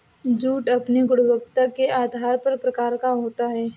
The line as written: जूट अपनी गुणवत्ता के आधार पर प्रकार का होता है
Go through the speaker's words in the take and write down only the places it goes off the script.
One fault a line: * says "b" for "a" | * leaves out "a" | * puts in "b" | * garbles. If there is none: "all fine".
all fine